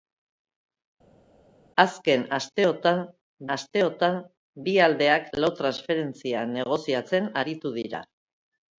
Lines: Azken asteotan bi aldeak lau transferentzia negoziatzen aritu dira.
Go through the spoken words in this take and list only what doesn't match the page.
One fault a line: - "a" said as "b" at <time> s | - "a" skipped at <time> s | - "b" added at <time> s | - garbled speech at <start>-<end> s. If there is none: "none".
- "asteotan" added at 3.5 s